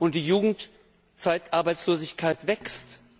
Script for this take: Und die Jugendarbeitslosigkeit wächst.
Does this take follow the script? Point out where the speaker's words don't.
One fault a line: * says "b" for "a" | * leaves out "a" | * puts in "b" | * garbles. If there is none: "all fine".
all fine